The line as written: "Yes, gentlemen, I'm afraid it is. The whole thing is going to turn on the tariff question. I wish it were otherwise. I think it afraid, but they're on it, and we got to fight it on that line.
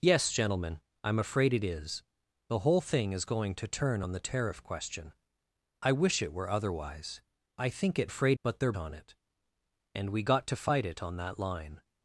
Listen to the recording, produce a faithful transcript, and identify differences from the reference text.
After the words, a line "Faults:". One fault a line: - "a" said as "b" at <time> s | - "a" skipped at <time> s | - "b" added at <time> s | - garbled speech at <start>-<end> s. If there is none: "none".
"Yes, gentlemen, I'm afraid it is. The whole thing is going to turn on the tariff question. I wish it were otherwise. I think it afraid, but they're on it, and we got to fight it on that line.
Faults:
none